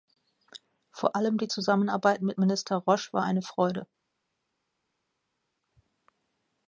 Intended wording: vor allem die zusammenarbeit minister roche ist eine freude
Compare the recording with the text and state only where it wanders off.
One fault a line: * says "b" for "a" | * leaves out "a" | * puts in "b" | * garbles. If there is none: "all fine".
* puts in "mit"
* says "war" for "ist"